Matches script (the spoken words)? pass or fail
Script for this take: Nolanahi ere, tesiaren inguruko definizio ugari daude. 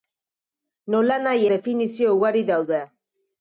fail